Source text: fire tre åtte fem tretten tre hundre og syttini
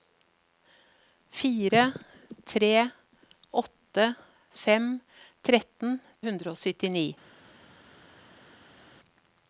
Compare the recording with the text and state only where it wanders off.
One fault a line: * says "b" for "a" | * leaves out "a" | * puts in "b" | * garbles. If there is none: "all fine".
* leaves out "tre"